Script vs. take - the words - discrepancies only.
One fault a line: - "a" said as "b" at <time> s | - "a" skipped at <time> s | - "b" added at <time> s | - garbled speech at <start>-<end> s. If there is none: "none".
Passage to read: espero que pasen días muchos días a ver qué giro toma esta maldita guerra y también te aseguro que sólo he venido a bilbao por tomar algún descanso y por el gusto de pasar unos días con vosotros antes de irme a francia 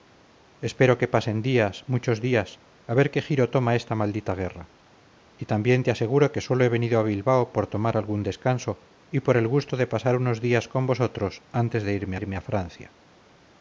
- "irme" added at 12.2 s